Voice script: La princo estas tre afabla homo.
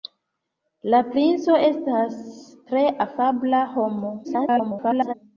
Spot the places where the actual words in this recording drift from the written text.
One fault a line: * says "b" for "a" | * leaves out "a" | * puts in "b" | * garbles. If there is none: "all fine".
* garbles